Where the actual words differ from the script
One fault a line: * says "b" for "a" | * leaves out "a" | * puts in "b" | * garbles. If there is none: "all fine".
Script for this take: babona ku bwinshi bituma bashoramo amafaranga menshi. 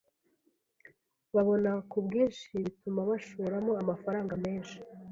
all fine